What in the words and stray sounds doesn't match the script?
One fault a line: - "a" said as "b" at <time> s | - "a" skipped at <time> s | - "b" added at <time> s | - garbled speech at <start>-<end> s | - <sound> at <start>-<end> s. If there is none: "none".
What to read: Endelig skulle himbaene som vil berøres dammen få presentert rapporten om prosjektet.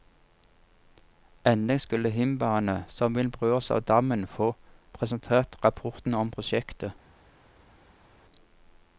- "av" added at 3.7 s